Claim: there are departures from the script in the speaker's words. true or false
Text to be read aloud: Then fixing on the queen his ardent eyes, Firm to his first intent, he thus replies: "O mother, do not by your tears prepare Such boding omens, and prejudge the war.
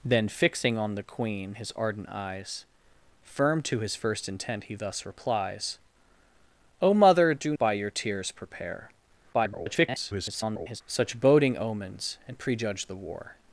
true